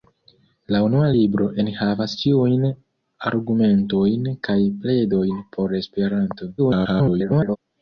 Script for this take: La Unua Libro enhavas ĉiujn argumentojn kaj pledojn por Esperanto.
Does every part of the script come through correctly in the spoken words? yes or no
no